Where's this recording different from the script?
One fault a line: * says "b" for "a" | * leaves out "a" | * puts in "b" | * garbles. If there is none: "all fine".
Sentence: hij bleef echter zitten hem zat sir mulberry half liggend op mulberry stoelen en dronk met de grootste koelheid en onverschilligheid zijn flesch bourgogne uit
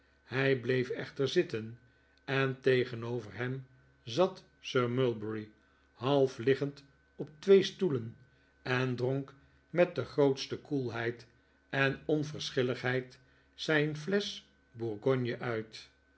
* puts in "en tegen'over"
* says "twee" for "mulberry"